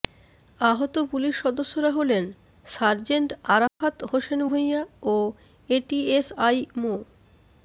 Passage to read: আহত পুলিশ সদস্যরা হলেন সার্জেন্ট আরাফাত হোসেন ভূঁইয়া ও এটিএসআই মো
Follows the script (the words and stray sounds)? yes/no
no